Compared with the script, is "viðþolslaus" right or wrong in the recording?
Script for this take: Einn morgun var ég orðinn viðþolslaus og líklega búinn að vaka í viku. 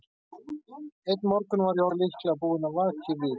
wrong